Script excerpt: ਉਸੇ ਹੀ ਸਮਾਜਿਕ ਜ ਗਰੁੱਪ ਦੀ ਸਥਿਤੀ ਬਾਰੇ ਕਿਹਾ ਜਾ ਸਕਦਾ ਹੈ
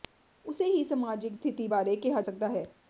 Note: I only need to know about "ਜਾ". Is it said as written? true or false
false